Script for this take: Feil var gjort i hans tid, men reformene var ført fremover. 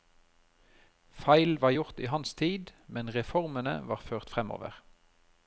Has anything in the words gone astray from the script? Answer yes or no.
no